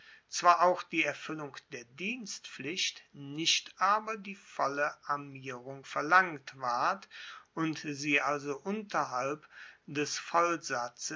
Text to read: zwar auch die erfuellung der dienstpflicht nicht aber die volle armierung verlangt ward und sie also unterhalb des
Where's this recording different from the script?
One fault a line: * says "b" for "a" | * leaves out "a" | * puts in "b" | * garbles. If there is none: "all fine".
all fine